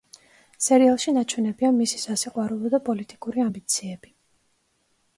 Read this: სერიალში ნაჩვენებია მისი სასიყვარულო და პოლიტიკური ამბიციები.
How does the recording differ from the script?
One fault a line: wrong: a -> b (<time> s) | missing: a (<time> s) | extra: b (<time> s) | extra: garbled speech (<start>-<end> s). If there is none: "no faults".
no faults